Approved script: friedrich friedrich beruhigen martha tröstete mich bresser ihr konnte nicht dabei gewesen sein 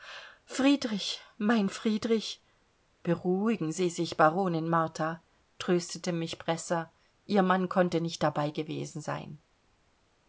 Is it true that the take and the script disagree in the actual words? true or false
true